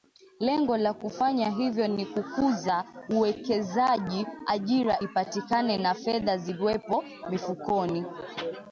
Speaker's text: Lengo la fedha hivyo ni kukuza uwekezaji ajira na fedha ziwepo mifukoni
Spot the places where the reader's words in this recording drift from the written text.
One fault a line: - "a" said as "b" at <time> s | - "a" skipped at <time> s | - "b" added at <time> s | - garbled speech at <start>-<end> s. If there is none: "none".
- "fedha" said as "kufanya" at 0.9 s
- "ipatikane" added at 5.0 s